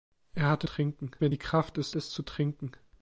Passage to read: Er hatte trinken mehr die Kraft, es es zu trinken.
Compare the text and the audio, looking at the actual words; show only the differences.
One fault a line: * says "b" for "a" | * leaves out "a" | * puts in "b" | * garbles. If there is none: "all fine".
all fine